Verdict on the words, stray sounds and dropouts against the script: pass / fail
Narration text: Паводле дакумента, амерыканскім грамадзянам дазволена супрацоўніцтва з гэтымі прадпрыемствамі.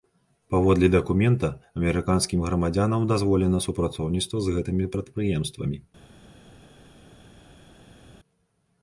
pass